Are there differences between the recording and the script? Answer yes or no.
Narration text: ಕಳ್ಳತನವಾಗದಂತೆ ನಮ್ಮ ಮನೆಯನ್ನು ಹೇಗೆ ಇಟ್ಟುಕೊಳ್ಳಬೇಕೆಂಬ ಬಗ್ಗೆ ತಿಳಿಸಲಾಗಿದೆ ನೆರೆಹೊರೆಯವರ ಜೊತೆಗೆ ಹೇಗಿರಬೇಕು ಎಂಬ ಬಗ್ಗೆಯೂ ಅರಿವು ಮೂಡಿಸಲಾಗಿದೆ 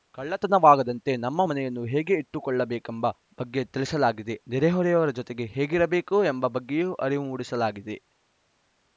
no